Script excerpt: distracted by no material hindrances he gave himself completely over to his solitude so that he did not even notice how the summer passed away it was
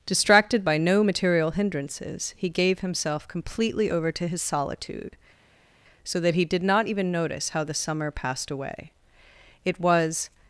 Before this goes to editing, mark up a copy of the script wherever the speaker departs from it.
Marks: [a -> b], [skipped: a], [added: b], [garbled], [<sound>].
distracted by no material hindrances he gave himself completely over to his solitude so that he did not even notice how the summer passed away it was